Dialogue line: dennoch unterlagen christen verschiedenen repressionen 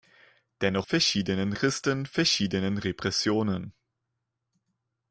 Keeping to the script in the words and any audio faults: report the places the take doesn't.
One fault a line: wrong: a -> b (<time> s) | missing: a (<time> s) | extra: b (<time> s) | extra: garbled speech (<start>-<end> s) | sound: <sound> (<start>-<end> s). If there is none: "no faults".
wrong: unterlagen -> verschiedenen (0.8 s)